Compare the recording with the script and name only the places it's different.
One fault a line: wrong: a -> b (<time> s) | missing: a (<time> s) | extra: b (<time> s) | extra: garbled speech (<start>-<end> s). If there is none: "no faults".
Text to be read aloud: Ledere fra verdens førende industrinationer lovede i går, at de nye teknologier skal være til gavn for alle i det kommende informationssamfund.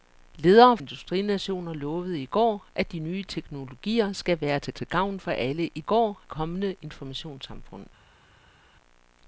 missing: fra verdens førende (0.8 s)
extra: til (4.7 s)
wrong: det -> går (5.8 s)